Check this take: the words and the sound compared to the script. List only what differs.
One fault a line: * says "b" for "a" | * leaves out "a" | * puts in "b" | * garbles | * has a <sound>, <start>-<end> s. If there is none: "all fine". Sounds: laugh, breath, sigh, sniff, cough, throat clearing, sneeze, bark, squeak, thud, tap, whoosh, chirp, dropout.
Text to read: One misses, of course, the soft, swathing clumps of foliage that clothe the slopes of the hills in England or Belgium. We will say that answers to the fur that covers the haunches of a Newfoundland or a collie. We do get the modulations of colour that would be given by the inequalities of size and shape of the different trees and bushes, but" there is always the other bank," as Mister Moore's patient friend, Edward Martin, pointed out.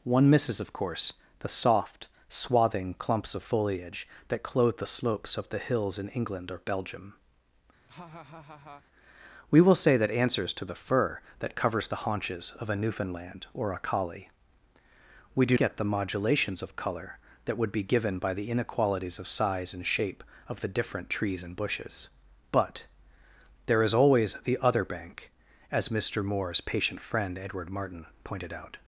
* has a laugh, 7.9-8.9 s